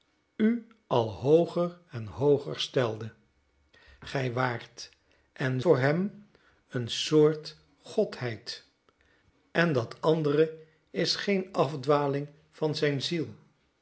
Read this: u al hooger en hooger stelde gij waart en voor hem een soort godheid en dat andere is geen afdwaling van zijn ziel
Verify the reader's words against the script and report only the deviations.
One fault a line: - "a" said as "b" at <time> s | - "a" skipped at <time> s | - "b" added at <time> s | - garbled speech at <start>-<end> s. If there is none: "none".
none